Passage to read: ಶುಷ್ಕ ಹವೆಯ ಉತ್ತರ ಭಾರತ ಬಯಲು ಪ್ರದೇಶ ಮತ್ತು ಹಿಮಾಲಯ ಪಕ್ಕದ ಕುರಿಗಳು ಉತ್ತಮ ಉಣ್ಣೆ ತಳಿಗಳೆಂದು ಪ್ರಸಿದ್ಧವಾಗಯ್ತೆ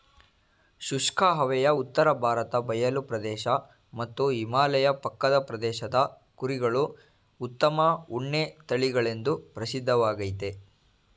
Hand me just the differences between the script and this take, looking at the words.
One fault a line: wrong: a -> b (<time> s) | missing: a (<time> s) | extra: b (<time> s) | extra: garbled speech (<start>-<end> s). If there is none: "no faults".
extra: ಪ್ರದೇಶದ (5.4 s)